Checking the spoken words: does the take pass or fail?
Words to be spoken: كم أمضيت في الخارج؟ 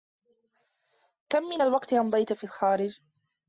fail